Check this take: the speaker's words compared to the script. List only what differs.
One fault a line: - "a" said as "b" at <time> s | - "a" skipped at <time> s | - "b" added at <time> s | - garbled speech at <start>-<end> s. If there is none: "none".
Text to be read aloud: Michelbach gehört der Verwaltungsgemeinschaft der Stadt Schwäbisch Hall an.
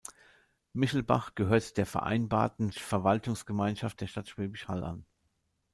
- "Vereinbarten" added at 1.9 s